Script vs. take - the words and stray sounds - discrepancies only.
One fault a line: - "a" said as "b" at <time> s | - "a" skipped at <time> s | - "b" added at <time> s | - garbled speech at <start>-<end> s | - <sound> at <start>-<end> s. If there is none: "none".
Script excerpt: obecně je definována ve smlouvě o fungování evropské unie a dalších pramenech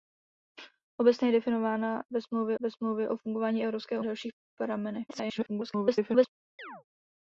- "ve smlouvě" added at 2.6 s
- "unie" skipped at 4.0 s
- garbled speech at 5.1-6.3 s
- chirp at 6.6-6.8 s